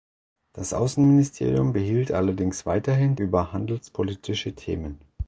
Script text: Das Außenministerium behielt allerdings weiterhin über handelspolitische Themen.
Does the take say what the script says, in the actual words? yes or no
yes